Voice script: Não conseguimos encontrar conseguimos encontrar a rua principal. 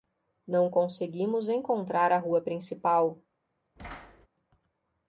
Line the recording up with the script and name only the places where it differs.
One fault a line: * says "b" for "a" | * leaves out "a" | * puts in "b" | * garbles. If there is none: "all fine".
* leaves out "conseguimos encontrar"